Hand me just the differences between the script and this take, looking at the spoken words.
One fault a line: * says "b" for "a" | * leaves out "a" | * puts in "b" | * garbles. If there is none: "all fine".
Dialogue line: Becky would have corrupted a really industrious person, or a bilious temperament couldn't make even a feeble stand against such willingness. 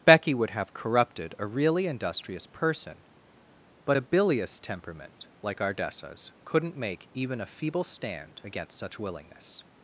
* says "but" for "or"
* puts in "like Ardessa's"